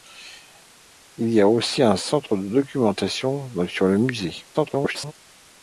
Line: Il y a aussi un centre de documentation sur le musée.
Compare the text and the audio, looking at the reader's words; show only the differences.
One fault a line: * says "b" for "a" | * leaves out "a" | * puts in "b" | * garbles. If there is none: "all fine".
* garbles